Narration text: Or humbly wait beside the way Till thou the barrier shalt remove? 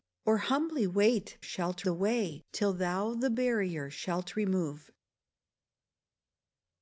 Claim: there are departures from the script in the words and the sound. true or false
true